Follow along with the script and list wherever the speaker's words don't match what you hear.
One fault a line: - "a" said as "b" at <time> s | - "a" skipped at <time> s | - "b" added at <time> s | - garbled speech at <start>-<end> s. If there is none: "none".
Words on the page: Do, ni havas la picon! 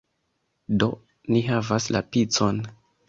none